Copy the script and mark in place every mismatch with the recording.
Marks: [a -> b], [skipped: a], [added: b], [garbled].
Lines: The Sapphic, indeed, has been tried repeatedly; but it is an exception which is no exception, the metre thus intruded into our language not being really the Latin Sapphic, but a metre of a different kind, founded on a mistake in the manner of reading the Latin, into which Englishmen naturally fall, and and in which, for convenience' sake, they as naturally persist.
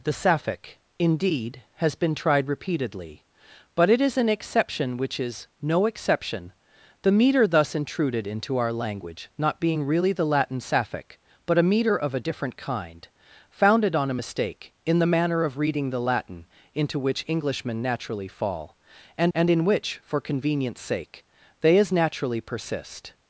The Sapphic, indeed, has been tried repeatedly; but it is an exception which is no exception, the metre thus intruded into our language not being really the Latin Sapphic, but a metre of a different kind, founded on a mistake in the manner of reading the Latin, into which Englishmen naturally fall, and and in which, for convenience' sake, they as naturally persist.